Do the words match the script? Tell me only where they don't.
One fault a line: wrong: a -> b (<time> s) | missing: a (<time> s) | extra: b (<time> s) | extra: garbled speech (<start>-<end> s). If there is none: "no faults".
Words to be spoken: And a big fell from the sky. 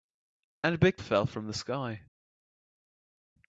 no faults